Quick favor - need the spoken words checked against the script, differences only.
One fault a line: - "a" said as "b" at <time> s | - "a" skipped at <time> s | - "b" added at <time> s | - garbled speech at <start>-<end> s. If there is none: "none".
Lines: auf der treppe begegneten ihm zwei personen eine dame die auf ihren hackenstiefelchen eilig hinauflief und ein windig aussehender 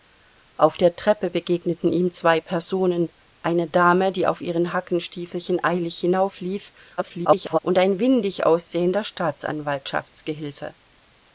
- garbled speech at 7.0-7.6 s